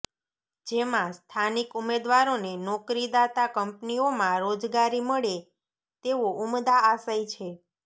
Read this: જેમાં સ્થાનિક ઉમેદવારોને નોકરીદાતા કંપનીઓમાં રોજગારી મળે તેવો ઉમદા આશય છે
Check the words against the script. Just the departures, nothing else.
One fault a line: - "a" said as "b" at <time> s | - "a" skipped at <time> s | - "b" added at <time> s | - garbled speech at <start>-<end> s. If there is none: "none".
none